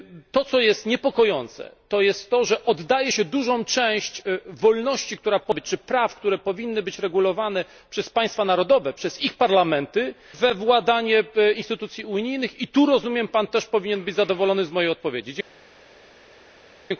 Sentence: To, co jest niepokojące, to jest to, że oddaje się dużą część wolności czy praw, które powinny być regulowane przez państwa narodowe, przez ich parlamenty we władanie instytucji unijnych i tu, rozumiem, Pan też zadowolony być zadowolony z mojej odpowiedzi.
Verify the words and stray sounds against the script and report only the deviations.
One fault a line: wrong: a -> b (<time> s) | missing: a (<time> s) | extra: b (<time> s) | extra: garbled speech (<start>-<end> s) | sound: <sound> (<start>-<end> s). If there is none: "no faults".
wrong: zadowolony -> powinien (13.6 s)